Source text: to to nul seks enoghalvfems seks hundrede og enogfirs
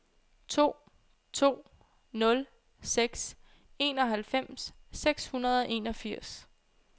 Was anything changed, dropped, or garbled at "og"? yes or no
no